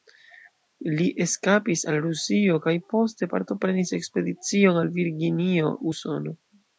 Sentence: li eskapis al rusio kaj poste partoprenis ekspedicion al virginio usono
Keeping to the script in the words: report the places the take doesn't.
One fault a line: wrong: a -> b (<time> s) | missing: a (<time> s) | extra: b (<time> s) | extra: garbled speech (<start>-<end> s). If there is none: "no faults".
no faults